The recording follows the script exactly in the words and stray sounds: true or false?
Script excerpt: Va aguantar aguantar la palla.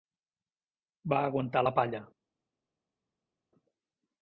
false